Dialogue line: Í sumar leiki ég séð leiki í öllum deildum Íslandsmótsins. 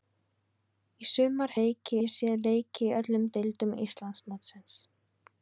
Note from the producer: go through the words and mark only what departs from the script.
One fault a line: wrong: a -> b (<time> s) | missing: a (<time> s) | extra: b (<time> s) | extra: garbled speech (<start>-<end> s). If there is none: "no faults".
no faults